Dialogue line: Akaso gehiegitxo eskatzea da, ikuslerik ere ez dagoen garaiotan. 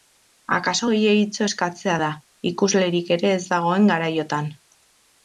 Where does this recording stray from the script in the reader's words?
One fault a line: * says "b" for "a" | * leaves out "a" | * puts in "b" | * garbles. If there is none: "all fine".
all fine